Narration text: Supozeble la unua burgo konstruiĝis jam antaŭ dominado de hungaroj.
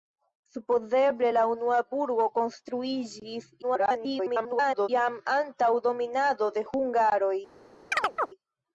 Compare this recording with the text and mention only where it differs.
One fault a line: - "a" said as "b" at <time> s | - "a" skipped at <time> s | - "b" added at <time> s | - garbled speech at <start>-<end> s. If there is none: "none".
- garbled speech at 3.6-4.9 s